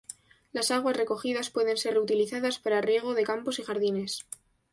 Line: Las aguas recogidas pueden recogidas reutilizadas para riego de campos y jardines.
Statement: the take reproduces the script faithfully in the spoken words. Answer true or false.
false